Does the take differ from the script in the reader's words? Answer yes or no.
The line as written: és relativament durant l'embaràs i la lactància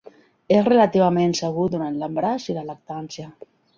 yes